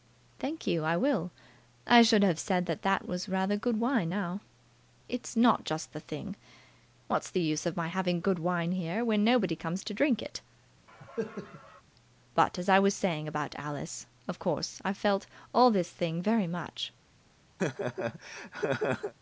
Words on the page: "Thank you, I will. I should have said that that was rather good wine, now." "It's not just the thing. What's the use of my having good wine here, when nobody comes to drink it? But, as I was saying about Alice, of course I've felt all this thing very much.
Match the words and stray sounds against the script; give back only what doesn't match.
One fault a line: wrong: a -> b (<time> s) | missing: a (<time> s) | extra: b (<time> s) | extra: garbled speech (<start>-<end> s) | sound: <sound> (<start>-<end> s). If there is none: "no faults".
sound: cough (10.9-11.8 s)
sound: laugh (17.6-19.1 s)